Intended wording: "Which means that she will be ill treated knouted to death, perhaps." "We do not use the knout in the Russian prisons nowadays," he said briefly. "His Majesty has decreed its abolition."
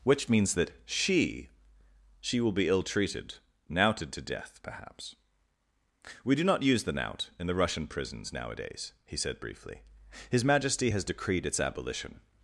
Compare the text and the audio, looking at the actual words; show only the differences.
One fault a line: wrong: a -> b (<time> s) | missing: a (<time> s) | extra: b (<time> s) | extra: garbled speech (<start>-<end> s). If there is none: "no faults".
extra: she (2.2 s)